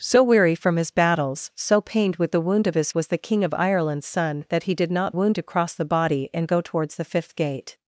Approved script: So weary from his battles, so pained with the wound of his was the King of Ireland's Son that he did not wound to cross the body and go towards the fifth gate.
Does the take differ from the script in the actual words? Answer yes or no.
no